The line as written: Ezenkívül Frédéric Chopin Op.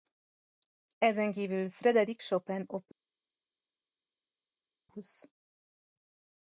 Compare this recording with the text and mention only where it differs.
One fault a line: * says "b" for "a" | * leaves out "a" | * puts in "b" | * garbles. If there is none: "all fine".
all fine